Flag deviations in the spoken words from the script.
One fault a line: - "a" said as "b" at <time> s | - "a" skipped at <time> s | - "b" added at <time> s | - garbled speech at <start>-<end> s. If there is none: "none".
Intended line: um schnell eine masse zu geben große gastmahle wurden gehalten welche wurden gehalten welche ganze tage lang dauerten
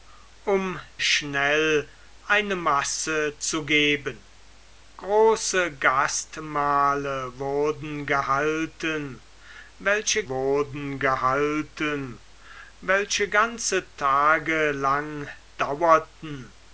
none